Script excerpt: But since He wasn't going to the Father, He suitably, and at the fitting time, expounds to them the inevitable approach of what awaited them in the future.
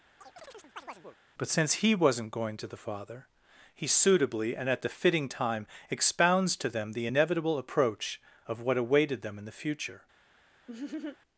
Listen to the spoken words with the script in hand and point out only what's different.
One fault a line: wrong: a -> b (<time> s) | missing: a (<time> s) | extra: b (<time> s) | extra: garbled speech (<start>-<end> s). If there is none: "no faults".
no faults